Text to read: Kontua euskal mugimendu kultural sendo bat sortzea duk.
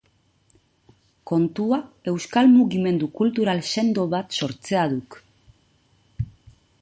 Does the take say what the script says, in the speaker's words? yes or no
yes